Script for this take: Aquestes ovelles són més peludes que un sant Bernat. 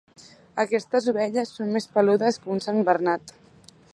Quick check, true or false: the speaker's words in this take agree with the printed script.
true